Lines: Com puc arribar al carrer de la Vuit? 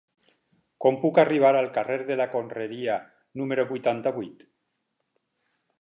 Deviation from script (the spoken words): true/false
true